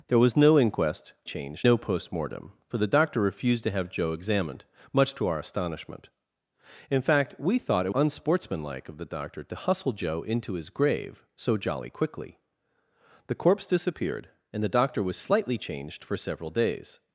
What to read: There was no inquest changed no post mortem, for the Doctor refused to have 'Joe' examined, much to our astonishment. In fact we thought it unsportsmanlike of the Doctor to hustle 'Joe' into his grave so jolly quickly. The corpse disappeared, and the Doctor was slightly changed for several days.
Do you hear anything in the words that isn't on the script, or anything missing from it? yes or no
no